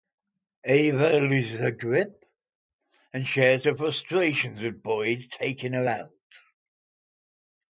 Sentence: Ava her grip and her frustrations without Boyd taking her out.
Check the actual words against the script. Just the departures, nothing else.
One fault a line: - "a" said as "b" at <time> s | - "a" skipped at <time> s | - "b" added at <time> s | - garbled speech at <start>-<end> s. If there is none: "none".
- "loses" added at 1.2 s
- "shares" added at 3.3 s
- "without" said as "with" at 4.6 s